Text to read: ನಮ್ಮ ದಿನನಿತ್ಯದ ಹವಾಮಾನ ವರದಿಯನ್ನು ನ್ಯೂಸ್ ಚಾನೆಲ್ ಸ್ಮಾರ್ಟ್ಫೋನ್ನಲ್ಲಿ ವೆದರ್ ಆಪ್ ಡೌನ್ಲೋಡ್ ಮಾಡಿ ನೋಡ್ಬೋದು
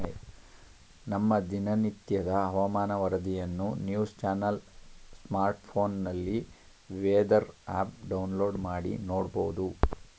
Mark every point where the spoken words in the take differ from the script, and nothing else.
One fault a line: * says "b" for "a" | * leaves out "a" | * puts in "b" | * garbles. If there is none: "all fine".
all fine